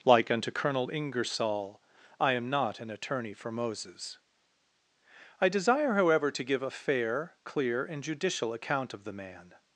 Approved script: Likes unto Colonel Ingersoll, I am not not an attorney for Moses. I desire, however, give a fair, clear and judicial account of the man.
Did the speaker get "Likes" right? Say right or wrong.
wrong